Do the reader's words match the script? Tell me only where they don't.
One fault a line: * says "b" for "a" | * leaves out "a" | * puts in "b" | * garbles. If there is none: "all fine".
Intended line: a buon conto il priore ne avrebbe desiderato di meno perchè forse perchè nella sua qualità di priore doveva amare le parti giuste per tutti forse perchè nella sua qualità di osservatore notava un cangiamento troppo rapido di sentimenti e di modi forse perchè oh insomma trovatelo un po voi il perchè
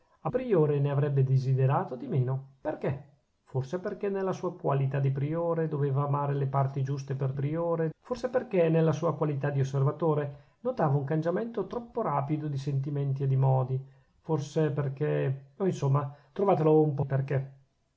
* leaves out "buon conto il"
* says "priore" for "tutti"
* leaves out "voi"